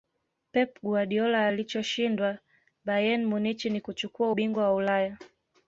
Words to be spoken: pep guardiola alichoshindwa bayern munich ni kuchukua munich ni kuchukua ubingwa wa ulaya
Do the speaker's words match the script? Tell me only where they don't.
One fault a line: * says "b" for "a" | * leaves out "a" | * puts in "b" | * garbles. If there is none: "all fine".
* leaves out "munich ni kuchukua"